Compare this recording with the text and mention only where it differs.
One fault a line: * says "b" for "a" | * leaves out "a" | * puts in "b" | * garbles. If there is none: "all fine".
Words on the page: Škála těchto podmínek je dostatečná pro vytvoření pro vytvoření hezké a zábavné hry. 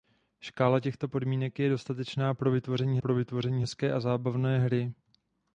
all fine